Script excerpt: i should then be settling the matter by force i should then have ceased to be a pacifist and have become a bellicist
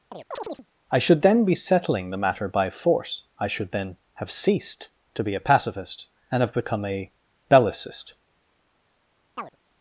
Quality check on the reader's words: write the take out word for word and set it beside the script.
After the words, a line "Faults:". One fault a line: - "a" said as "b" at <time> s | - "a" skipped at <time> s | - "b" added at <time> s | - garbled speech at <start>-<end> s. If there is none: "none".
i should then be settling the matter by force i should then have ceased to be a pacifist and have become a bellicist
Faults:
none